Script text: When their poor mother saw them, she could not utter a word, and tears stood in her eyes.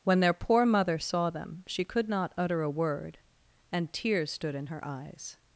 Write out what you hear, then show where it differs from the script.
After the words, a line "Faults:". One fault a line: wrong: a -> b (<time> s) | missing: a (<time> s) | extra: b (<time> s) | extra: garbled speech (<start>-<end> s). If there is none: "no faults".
When their poor mother saw them, she could not utter a word, and tears stood in her eyes.
Faults:
no faults